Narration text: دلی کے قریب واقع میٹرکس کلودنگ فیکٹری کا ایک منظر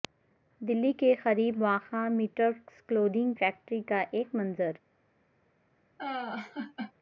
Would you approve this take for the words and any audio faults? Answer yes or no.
no